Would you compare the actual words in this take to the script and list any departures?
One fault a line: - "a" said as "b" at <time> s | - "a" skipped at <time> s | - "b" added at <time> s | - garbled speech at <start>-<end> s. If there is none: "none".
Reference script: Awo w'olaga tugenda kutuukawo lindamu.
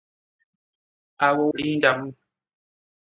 - "w'olaga tugenda kutuukawo" skipped at 1.4 s